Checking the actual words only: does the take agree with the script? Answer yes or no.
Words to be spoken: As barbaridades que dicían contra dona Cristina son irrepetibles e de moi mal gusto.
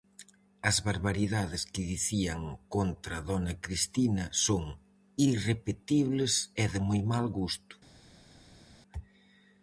yes